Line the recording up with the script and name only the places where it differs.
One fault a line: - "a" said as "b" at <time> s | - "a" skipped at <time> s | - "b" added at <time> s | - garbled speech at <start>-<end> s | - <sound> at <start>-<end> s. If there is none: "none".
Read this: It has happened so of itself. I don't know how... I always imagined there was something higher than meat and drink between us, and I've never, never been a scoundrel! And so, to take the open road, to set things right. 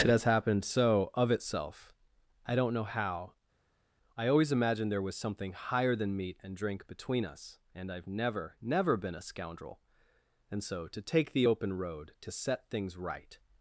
none